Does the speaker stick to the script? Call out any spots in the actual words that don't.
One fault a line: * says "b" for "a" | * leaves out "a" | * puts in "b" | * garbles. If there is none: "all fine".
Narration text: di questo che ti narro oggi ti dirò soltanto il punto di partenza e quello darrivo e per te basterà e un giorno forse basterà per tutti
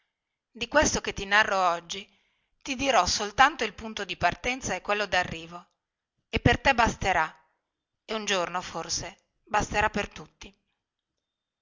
all fine